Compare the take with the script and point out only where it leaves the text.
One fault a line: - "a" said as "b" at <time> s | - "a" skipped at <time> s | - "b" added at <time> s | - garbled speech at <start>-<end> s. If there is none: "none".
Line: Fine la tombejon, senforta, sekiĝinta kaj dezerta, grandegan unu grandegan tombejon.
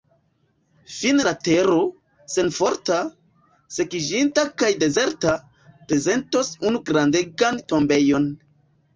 - "tombejon" said as "tero" at 1.5 s
- "grandegan" said as "prezentos" at 5.9 s